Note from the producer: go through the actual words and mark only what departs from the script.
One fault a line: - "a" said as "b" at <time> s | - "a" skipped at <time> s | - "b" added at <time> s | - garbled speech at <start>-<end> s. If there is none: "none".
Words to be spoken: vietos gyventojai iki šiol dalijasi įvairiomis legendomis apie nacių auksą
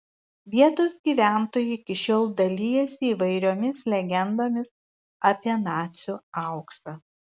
none